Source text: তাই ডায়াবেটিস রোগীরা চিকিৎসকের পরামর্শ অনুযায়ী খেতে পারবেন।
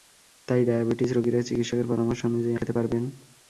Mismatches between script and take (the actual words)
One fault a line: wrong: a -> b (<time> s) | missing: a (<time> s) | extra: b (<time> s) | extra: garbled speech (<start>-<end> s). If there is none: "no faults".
no faults